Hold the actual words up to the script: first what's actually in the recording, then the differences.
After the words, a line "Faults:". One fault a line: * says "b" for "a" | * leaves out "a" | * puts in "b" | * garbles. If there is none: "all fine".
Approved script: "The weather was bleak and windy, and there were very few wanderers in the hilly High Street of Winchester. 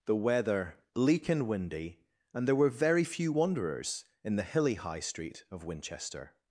"The weather bleak and windy, and there were very few wanderers in the hilly High Street of Winchester.
Faults:
* leaves out "was"